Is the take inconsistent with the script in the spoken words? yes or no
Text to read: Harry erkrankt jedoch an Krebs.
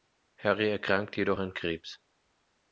no